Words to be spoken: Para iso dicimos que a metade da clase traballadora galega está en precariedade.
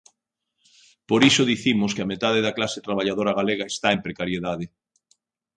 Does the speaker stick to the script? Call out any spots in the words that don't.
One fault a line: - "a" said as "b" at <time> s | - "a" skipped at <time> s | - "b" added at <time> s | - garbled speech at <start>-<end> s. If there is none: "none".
- "Para" said as "Por" at 1.1 s